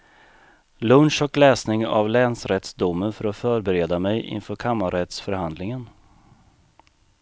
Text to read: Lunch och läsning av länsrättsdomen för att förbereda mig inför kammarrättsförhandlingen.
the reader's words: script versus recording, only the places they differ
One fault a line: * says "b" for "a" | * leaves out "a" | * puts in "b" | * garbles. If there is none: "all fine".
all fine